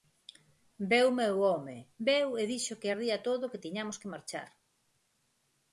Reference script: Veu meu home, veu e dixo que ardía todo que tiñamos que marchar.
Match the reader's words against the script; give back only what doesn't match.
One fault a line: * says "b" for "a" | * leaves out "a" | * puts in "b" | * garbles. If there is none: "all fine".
all fine